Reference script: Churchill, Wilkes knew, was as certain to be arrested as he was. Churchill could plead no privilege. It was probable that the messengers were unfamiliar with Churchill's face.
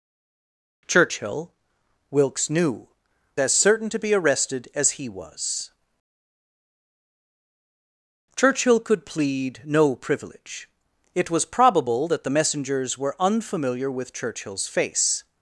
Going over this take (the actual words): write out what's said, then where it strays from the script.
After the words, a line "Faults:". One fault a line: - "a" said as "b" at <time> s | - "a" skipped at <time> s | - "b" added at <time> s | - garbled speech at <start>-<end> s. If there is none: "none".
Churchill, Wilkes knew, as certain to be arrested as he was. Churchill could plead no privilege. It was probable that the messengers were unfamiliar with Churchill's face.
Faults:
- "was" skipped at 2.9 s